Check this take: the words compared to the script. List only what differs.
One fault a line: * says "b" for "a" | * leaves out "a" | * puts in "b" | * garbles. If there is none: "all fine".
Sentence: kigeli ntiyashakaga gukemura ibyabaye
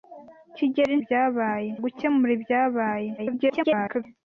* says "ibyabaye" for "ntiyashakaga"
* garbles